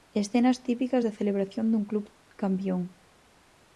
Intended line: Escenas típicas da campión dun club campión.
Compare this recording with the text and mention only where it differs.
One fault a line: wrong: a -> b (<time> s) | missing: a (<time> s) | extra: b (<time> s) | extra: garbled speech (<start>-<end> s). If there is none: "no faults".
wrong: campión -> celebración (1.2 s)